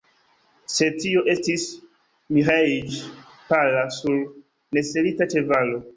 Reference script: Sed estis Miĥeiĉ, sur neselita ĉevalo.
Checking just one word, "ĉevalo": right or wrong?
right